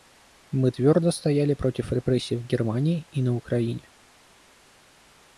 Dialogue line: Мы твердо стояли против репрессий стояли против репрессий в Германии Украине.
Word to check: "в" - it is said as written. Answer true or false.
false